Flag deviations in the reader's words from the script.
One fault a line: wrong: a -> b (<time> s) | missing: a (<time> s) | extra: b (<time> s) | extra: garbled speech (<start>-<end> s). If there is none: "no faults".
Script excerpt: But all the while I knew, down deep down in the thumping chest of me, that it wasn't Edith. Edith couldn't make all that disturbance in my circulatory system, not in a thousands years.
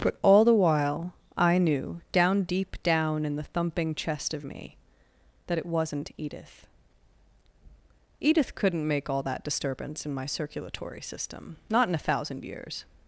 wrong: thousands -> thousand (12.0 s)